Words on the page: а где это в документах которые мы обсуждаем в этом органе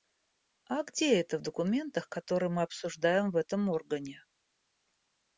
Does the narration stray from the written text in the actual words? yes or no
no